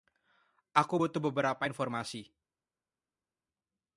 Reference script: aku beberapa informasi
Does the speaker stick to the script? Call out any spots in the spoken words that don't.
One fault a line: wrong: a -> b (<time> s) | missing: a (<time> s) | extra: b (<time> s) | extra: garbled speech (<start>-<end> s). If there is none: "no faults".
extra: butuh (0.9 s)